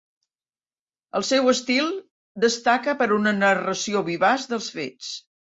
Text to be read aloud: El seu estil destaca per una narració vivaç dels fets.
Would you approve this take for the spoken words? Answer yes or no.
yes